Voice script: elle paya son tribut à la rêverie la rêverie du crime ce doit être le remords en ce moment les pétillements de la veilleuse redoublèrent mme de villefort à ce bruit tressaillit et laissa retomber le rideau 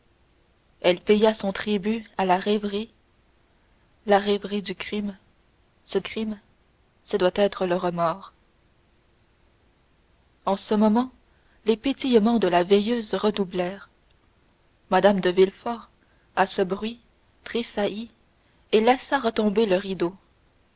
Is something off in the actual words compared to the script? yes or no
yes